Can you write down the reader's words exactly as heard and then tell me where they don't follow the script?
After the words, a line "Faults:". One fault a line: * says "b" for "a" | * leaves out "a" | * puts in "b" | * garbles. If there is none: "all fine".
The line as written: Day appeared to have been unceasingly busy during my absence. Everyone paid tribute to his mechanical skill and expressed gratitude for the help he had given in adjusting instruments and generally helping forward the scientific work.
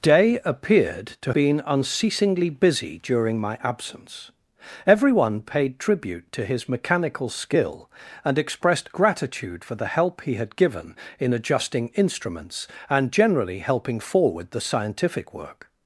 Day appeared to been unceasingly busy during my absence. Everyone paid tribute to his mechanical skill and expressed gratitude for the help he had given in adjusting instruments and generally helping forward the scientific work.
Faults:
* leaves out "have"